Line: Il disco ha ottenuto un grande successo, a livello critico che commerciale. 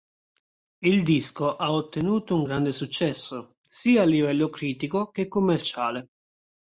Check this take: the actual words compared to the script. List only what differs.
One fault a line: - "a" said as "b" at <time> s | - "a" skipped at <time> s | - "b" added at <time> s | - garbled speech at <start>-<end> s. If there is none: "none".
- "sia" added at 3.6 s